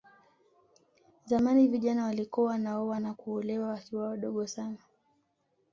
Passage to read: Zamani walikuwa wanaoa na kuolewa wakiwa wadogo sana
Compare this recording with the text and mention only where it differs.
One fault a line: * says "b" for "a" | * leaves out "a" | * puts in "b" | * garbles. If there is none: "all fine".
* puts in "vijana"